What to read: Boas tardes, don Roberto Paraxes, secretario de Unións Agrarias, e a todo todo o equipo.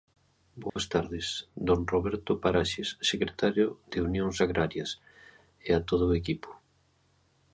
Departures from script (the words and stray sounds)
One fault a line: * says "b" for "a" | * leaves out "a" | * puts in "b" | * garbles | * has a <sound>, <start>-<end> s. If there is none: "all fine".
* has a dropout, 0.7-0.8 s
* leaves out "todo"